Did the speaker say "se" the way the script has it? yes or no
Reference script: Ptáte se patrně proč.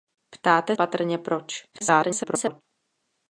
no